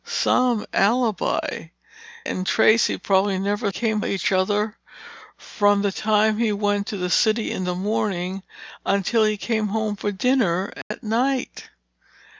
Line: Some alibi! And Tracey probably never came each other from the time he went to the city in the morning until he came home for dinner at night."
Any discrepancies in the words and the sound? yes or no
yes